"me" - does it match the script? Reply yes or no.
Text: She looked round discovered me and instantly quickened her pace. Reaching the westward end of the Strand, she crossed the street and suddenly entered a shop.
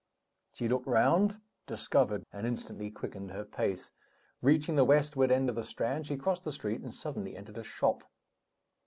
no